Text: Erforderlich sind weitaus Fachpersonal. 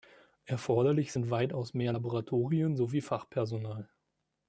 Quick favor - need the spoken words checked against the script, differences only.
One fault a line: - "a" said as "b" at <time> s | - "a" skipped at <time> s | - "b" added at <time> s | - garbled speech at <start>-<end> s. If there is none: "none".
- "mehr Laboratorien sowie" added at 1.7 s